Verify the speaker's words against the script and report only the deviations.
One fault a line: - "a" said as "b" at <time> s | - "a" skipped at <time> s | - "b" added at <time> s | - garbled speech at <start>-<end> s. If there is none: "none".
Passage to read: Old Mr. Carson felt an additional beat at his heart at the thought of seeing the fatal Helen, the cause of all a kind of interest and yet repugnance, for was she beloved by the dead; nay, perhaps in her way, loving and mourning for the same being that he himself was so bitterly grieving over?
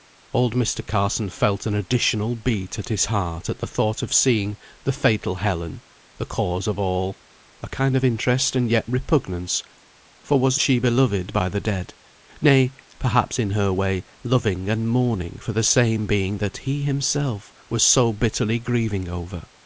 none